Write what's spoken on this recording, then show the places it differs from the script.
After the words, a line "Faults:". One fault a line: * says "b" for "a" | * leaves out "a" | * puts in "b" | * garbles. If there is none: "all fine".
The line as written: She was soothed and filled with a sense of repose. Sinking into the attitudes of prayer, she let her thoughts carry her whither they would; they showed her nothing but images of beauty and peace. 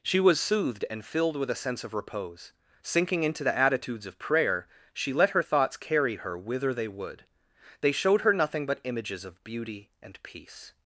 She was soothed and filled with a sense of repose. Sinking into the attitudes of prayer, she let her thoughts carry her whither they would; they showed her nothing but images of beauty and peace.
Faults:
all fine